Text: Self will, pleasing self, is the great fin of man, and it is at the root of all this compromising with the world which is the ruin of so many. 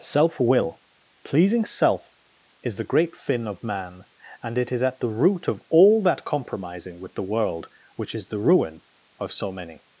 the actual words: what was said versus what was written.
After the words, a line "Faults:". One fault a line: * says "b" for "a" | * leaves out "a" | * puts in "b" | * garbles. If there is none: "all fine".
Self will, pleasing self, is the great fin of man, and it is at the root of all that compromising with the world which is the ruin of so many.
Faults:
* says "that" for "this"